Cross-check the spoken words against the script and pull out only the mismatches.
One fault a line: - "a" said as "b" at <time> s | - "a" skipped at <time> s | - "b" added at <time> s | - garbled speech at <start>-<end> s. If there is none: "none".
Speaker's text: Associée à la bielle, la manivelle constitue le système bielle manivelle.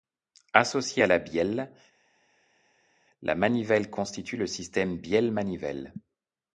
none